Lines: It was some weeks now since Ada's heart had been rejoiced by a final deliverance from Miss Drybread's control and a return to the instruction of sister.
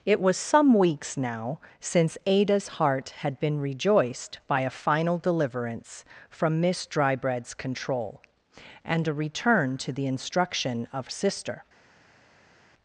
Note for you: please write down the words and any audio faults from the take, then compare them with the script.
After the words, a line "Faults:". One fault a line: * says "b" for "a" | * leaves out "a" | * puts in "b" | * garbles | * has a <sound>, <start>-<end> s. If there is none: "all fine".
It was some weeks now since Ada's heart had been rejoiced by a final deliverance from Miss Drybread's control and a return to the instruction of sister.
Faults:
all fine